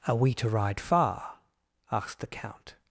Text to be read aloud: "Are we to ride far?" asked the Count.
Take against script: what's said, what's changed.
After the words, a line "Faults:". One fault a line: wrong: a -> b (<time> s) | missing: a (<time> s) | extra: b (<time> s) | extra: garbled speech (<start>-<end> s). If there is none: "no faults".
"Are we to ride far?" asked the Count.
Faults:
no faults